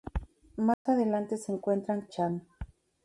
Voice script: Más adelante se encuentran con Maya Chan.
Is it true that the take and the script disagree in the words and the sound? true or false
true